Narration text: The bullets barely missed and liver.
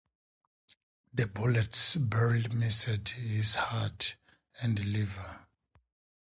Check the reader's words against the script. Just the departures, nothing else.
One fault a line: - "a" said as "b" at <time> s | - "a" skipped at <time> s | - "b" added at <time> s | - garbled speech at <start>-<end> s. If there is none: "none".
- "his heart" added at 3.1 s